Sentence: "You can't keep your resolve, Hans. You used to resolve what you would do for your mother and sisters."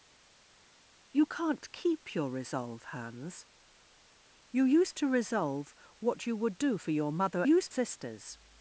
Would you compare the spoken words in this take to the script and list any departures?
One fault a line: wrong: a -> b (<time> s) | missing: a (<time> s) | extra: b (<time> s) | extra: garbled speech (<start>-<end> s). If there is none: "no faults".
wrong: and -> used (7.4 s)